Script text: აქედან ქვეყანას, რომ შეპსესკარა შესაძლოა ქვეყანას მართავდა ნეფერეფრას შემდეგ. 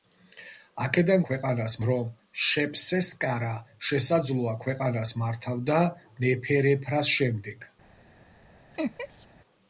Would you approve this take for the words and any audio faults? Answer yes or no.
no